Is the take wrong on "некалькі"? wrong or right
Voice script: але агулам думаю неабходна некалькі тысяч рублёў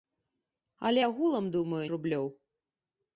wrong